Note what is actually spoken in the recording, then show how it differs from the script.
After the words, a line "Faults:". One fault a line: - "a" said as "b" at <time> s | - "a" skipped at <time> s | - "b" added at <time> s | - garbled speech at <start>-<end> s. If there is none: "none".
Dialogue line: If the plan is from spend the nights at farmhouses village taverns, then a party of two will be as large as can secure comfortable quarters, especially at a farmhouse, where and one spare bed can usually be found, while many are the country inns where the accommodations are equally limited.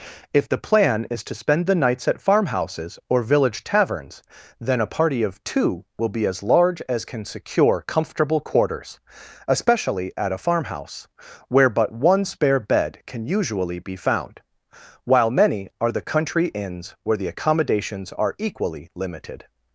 If the plan is to spend the nights at farmhouses or village taverns, then a party of two will be as large as can secure comfortable quarters, especially at a farmhouse, where but one spare bed can usually be found, while many are the country inns where the accommodations are equally limited.
Faults:
- "from" said as "to" at 1.2 s
- "or" added at 3.1 s
- "and" said as "but" at 11.7 s